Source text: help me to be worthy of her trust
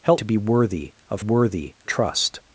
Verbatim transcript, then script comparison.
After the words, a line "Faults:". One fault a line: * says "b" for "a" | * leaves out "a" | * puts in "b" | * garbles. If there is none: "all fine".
help to be worthy of worthy trust
Faults:
* leaves out "me"
* says "worthy" for "her"